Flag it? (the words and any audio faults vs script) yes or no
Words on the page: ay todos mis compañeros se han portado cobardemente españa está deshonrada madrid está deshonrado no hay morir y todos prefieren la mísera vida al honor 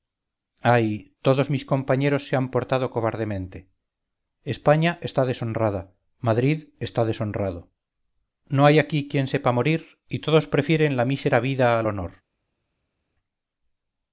yes